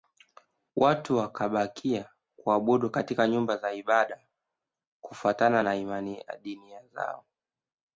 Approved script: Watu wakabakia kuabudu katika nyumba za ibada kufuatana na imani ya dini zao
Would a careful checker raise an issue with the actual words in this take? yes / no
no